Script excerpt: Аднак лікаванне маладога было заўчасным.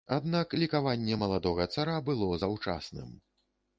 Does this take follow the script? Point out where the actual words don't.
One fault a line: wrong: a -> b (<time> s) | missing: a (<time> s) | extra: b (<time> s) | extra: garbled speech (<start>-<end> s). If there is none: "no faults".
extra: цара (1.7 s)